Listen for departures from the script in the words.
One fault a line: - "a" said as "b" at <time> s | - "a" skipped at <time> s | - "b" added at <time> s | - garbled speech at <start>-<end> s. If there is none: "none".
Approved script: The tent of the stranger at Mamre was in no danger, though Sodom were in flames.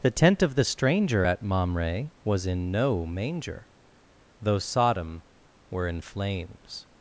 - "danger" said as "manger" at 3.1 s